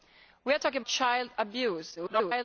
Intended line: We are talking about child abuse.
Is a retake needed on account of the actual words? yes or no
yes